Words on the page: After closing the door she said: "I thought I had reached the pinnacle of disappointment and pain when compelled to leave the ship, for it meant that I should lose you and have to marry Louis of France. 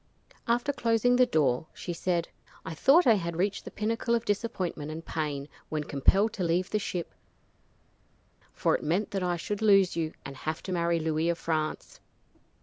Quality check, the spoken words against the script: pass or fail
pass